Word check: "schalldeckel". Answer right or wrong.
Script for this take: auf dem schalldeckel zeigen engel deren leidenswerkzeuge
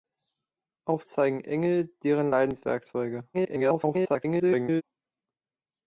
wrong